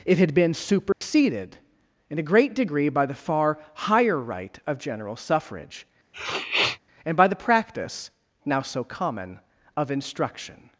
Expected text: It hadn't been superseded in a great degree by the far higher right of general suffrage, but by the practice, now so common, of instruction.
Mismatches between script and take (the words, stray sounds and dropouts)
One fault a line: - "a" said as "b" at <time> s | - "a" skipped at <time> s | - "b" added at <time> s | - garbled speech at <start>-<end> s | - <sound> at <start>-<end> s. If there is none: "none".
- "hadn't" said as "had" at 0.2 s
- dropout at 0.9-1.0 s
- sniff at 6.1-6.8 s
- "but" said as "and" at 7.0 s